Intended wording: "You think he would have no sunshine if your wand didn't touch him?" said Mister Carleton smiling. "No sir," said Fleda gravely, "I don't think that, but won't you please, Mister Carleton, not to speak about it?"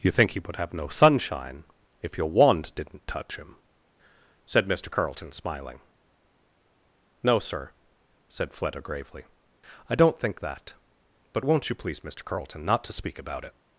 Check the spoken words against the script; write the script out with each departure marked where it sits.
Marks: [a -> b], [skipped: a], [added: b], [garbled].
"You think he would have no sunshine if your wand didn't touch him?" said Mister Carleton smiling. "No sir," said Fleda gravely, "I don't think that, but won't you please, Mister Carleton, not to speak about it?"